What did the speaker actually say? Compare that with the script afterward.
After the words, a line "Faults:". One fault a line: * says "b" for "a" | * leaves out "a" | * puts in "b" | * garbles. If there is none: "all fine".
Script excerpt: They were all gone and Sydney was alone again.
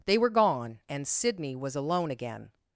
They were gone and Sydney was alone again.
Faults:
* leaves out "all"